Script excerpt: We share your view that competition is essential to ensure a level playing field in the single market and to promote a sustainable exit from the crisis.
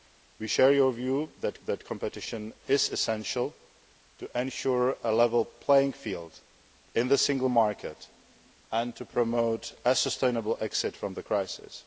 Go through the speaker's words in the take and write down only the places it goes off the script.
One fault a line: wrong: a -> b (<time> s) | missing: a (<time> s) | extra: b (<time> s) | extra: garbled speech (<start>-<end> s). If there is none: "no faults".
extra: that (1.7 s)